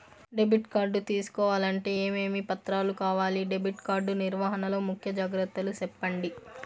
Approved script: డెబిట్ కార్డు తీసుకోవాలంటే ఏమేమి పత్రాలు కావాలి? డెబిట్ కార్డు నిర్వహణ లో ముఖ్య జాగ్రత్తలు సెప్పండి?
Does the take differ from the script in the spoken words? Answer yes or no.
no